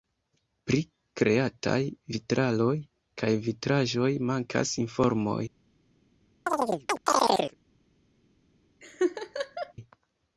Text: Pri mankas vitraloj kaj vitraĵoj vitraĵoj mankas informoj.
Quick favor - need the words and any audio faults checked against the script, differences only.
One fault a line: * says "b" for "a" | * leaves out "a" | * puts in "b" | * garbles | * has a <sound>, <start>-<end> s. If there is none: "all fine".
* says "kreataj" for "mankas"
* leaves out "vitraĵoj"
* has a chirp, 6.5-7.6 s
* has a laugh, 8.8-9.7 s